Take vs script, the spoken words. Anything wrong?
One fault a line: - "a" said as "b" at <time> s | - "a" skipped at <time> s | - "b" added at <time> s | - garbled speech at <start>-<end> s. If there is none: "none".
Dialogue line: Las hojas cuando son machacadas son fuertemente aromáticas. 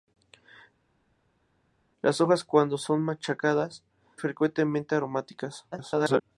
- "son" skipped at 3.8 s
- garbled speech at 5.7-6.2 s